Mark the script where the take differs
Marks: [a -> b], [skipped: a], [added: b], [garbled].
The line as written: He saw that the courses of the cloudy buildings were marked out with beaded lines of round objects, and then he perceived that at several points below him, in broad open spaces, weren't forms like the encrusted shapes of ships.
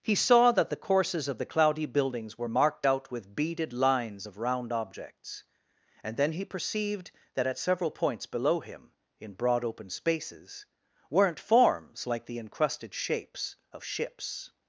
He saw that the courses of the cloudy buildings were marked out with beaded lines of round objects, and then he perceived that at several points below him, in broad open spaces, weren't forms like the encrusted shapes of ships.